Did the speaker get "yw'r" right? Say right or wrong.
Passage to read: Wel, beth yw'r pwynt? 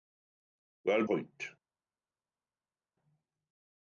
wrong